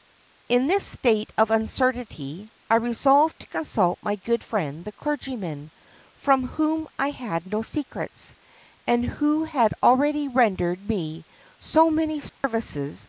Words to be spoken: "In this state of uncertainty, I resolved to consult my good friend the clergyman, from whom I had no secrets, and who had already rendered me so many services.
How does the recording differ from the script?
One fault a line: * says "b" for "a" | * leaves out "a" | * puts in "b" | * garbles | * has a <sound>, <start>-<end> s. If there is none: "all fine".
* has a dropout, 12.3-12.4 s